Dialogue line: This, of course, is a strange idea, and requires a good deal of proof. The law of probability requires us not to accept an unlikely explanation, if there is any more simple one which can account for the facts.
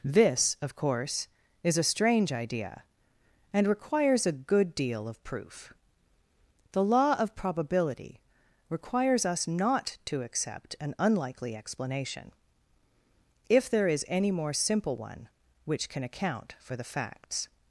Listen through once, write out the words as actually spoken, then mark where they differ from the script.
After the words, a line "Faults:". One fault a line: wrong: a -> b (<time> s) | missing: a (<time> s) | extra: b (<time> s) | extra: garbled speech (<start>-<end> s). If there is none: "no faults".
This, of course, is a strange idea, and requires a good deal of proof. The law of probability requires us not to accept an unlikely explanation, if there is any more simple one which can account for the facts.
Faults:
no faults